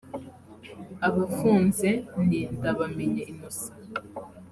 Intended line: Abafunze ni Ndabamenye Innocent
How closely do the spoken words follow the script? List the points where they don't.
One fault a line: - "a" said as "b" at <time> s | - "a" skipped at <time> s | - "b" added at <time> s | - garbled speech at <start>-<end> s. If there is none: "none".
none